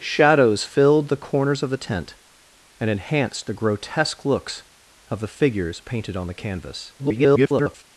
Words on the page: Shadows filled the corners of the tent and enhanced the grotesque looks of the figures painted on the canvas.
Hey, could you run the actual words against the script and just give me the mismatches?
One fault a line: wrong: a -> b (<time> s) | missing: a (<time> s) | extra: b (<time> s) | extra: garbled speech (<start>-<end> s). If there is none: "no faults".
extra: garbled speech (7.0-7.8 s)